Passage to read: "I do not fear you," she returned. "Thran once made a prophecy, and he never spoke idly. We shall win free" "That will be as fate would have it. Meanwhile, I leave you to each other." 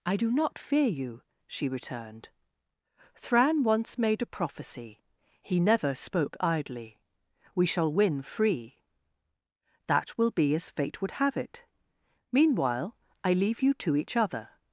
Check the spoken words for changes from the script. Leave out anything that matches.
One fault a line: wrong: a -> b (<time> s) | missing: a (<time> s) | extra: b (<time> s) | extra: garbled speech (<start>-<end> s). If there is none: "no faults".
missing: and (5.0 s)